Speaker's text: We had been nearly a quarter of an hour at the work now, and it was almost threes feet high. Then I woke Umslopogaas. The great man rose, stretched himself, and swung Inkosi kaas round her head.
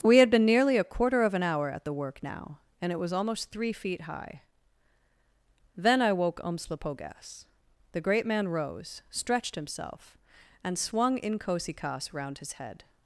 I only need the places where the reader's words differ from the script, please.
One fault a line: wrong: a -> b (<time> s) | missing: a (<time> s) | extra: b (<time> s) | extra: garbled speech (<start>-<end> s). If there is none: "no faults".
wrong: threes -> three (3.5 s)
wrong: her -> his (12.4 s)